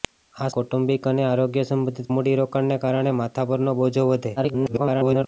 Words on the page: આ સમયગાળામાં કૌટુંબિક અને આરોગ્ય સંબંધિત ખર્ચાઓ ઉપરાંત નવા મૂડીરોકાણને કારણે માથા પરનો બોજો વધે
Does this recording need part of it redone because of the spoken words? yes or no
yes